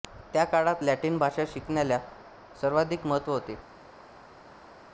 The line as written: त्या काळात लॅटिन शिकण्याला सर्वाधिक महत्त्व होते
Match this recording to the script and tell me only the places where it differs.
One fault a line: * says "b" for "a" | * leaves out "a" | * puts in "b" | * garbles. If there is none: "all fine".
* puts in "भाषा"